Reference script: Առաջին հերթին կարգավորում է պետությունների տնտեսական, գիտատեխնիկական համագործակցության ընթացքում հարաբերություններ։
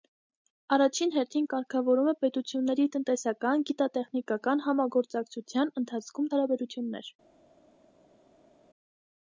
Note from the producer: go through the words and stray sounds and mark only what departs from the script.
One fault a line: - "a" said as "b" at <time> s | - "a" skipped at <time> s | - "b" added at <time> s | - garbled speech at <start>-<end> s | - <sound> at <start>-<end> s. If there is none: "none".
none